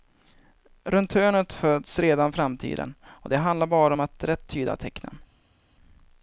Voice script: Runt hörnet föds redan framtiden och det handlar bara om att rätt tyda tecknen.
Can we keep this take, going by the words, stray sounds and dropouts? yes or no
yes